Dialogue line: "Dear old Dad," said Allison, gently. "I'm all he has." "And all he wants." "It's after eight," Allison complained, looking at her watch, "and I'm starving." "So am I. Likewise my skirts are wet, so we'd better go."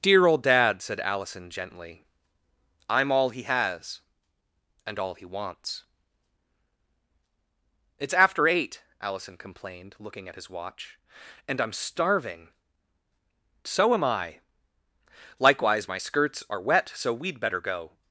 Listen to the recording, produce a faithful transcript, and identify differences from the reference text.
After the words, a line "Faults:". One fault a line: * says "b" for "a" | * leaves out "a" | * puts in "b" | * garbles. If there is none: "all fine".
"Dear old Dad," said Allison, gently. "I'm all he has." "And all he wants." "It's after eight," Allison complained, looking at his watch, "and I'm starving." "So am I. Likewise my skirts are wet, so we'd better go."
Faults:
* says "his" for "her"